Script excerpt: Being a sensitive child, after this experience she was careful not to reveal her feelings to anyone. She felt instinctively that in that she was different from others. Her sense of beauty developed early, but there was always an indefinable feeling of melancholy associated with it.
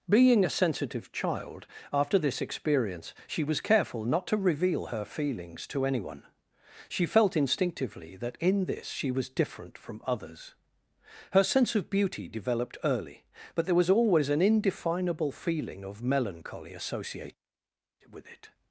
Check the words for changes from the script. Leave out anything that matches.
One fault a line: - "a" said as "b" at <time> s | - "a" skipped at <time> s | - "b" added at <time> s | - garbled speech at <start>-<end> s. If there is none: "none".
- "that" said as "this" at 8.7 s